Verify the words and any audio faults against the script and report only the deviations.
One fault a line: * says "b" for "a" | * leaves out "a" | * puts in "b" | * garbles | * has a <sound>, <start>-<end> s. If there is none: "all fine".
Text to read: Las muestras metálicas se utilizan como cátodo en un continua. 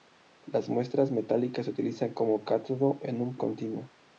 all fine